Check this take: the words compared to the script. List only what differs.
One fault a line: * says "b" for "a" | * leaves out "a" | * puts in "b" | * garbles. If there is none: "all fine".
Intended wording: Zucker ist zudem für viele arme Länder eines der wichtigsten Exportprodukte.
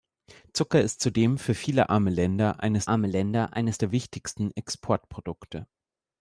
* puts in "arme Länder eines"